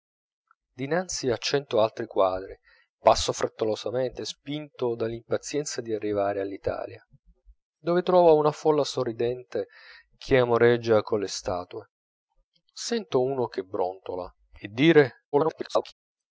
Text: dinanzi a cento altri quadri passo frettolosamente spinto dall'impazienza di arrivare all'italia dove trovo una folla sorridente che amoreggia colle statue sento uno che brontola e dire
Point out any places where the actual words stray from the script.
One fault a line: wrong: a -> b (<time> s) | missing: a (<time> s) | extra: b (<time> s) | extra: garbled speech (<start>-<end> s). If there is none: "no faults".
extra: garbled speech (15.3-15.9 s)